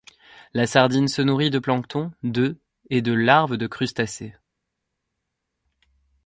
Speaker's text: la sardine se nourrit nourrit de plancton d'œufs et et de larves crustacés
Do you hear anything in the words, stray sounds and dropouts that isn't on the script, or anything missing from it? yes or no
yes